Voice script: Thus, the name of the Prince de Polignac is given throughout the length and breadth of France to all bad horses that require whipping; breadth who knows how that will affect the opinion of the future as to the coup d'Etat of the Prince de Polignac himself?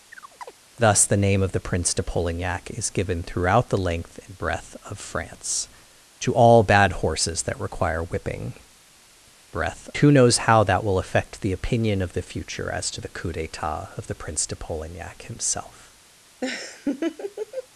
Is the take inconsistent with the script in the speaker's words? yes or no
no